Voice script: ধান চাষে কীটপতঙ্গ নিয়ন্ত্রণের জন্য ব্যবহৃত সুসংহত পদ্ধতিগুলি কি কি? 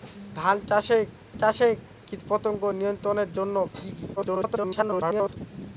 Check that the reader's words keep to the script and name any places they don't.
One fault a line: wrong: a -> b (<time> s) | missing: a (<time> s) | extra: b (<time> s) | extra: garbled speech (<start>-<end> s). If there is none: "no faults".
extra: চাষে (1.4 s)
missing: ব্যবহৃত সুসংহত পদ্ধতিগুলি (3.6 s)
extra: garbled speech (4.2-5.4 s)